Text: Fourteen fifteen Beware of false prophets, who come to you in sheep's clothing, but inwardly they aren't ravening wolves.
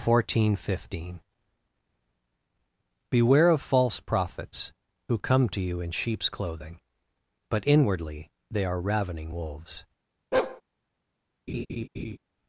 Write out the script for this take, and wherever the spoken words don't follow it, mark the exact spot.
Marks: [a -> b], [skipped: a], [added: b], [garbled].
Fourteen fifteen Beware of false prophets, who come to you in sheep's clothing, but inwardly they [aren't -> are] ravening wolves.